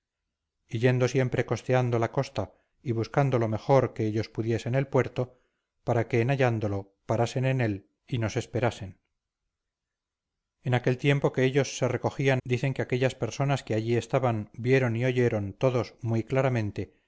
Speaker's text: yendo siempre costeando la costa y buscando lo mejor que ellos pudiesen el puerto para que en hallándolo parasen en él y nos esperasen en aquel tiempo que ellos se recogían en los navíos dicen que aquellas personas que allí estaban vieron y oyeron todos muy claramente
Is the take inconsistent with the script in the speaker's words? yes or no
yes